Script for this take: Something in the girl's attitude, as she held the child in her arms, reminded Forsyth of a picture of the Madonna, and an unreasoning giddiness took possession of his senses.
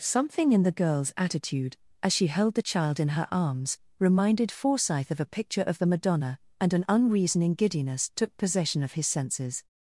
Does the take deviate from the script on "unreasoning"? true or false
false